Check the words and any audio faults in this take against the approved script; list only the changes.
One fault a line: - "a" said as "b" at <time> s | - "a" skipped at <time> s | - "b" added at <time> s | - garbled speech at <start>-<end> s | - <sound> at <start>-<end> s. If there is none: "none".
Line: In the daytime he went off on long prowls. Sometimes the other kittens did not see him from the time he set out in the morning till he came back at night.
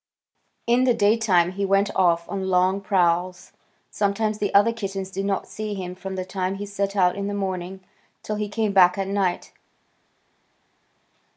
none